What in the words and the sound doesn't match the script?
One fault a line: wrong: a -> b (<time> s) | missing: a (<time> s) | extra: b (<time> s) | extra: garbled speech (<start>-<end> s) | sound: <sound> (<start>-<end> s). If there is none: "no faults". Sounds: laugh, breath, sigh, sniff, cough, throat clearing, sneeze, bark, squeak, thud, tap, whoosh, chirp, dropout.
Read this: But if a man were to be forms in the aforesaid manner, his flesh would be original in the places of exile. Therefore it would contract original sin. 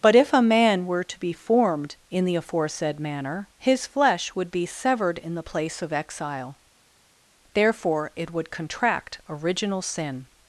wrong: forms -> formed (1.3 s)
wrong: original -> severed (4.7 s)
wrong: places -> place (5.4 s)